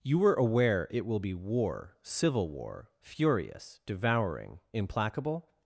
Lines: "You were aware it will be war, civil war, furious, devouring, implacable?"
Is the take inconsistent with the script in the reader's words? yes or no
no